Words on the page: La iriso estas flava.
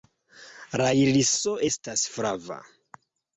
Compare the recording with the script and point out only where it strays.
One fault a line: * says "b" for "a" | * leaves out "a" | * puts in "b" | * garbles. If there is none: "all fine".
all fine